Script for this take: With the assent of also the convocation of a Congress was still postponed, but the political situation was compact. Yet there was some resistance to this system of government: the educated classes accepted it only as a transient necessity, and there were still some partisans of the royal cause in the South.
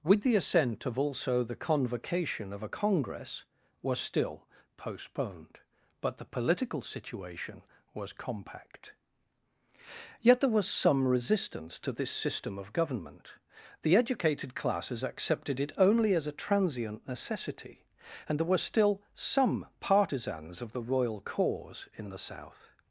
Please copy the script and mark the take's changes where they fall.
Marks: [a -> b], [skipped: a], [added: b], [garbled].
With the assent of also the convocation of a Congress was still postponed, but the political situation was compact. Yet there was some resistance to this system of government: the educated classes accepted it only as a transient necessity, and there were still some partisans of the royal cause in the South.